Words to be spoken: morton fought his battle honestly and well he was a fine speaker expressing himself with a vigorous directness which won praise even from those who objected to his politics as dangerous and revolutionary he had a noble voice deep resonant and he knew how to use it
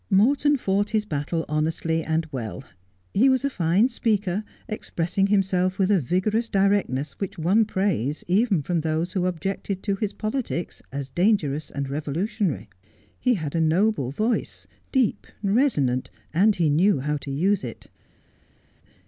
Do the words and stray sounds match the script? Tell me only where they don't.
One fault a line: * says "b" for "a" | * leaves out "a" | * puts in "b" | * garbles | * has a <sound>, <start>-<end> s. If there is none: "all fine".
all fine